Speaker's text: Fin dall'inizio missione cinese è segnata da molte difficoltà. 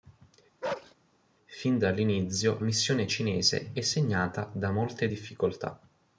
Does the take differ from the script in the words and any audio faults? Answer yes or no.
yes